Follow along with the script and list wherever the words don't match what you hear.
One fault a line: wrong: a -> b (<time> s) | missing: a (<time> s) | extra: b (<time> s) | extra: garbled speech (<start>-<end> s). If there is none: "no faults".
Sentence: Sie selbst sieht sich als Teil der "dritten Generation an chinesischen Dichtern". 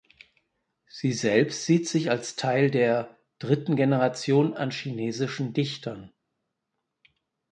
no faults